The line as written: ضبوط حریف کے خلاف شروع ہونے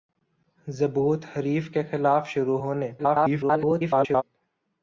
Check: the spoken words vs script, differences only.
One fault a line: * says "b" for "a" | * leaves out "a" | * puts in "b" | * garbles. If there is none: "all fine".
* garbles